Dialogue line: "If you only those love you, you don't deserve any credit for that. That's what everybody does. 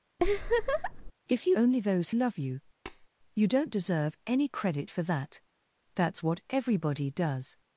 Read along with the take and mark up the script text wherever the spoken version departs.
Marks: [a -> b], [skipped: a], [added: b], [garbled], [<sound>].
[laugh] "If you only those love you, [tap] you don't deserve any credit for that. That's what everybody does.